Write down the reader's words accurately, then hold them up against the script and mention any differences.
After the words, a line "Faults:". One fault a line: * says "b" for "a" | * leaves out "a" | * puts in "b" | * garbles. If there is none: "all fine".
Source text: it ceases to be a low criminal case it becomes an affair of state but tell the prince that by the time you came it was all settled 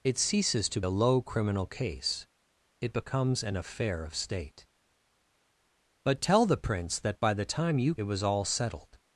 it ceases to a low criminal case it becomes an affair of state but tell the prince that by the time you it was all settled
Faults:
* leaves out "be"
* leaves out "came"